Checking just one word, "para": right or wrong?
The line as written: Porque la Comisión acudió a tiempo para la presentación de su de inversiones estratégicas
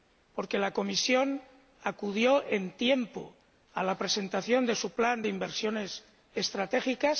wrong